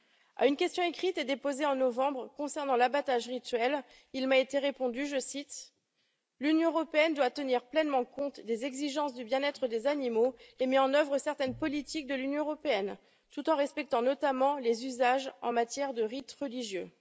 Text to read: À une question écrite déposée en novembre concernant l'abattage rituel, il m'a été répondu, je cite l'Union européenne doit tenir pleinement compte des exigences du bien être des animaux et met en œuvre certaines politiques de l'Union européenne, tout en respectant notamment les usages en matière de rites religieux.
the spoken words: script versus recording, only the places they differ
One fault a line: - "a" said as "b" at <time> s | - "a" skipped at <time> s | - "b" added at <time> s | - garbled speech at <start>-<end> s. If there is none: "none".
none